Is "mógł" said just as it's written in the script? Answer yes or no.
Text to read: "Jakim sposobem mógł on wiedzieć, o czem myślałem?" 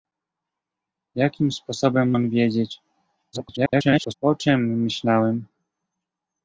no